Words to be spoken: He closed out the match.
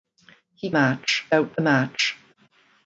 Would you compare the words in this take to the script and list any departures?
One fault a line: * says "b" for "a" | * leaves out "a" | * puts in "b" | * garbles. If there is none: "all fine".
* says "match" for "closed"